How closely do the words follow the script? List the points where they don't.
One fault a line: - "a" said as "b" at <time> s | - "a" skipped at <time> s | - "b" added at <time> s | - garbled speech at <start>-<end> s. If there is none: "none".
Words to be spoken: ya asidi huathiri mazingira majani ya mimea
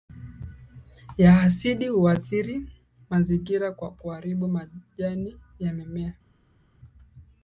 - "kwa kuharibu" added at 3.7 s